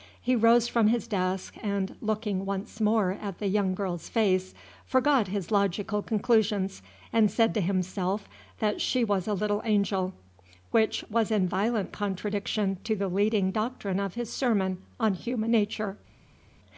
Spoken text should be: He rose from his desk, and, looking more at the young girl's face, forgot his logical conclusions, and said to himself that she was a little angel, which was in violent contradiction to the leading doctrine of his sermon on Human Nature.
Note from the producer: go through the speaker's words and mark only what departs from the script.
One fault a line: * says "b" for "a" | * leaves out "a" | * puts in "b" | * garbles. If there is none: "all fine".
* puts in "once"